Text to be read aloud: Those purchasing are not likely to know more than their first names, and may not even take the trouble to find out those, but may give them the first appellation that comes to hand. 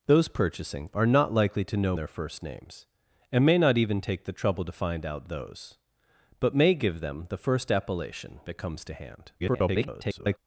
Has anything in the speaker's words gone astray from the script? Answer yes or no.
yes